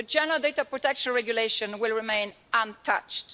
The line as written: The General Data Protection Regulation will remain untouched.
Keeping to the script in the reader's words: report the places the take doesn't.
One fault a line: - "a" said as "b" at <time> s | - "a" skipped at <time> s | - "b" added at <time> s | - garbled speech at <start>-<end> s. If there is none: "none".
none